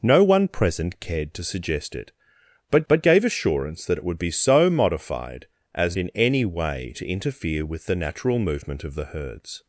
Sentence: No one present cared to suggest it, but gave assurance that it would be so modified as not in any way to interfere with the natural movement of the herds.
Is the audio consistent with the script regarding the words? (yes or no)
no